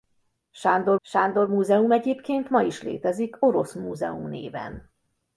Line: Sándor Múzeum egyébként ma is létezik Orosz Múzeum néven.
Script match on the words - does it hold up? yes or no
no